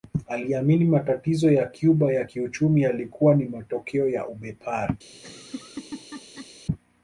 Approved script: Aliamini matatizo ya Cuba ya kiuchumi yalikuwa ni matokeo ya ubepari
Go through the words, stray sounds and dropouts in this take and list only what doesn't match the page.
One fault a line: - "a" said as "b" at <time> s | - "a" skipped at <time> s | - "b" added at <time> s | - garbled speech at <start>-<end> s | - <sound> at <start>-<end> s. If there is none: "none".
- laugh at 5.1-6.5 s